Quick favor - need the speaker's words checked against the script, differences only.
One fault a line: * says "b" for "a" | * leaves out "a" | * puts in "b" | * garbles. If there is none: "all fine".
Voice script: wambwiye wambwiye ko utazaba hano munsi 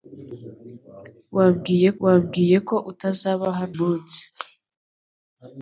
all fine